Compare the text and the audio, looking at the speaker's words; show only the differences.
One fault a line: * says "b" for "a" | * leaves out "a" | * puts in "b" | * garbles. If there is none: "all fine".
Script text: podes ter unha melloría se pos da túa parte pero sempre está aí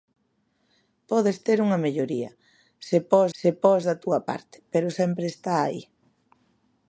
* puts in "se pos"